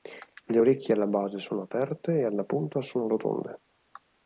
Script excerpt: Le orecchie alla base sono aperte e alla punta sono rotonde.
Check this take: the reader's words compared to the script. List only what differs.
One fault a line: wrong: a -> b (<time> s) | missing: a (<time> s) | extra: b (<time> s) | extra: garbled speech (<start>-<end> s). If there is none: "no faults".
no faults